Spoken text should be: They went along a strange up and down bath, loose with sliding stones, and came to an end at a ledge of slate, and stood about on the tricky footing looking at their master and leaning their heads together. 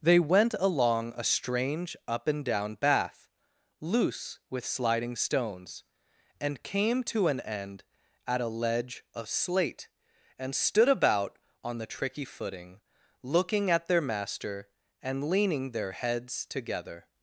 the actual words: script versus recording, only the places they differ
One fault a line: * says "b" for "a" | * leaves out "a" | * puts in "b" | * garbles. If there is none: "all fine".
all fine